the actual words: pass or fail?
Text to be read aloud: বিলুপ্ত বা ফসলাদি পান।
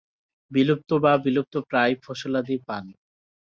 fail